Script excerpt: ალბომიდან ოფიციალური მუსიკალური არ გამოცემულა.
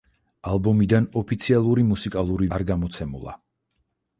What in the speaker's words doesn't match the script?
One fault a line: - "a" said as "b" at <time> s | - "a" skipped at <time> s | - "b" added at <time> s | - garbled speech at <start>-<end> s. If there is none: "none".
none